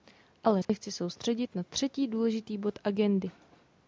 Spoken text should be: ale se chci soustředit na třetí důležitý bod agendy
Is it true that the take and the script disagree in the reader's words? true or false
false